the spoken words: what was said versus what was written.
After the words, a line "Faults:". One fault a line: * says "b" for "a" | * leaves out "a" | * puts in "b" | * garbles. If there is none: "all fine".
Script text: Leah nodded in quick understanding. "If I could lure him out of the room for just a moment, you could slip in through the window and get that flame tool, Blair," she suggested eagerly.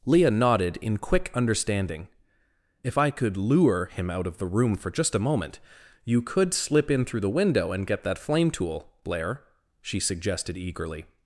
Leah nodded in quick understanding. "If I could lure him out of the room for just a moment, you could slip in through the window and get that flame tool, Blair," she suggested eagerly.
Faults:
all fine